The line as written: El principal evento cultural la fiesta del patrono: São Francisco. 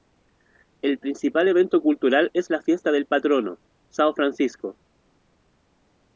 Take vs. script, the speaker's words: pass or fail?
fail